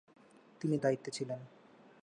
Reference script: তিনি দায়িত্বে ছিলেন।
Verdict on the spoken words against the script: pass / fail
pass